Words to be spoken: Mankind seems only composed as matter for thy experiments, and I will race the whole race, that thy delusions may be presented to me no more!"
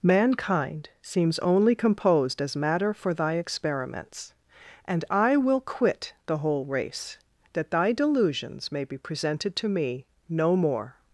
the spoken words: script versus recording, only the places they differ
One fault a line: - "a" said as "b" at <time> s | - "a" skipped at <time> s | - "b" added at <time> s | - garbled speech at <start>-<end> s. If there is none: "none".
- "race" said as "quit" at 5.6 s